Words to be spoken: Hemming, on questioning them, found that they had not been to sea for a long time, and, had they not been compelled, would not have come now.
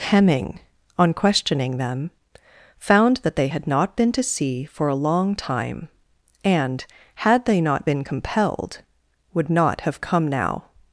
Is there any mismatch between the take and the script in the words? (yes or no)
no